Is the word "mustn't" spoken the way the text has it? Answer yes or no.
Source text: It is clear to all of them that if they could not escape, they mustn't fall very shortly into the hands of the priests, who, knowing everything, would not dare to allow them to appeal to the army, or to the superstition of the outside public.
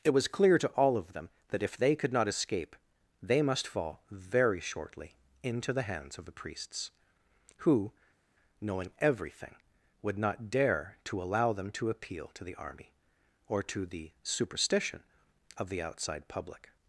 no